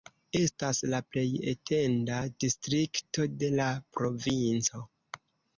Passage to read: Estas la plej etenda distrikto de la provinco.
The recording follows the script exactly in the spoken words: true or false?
true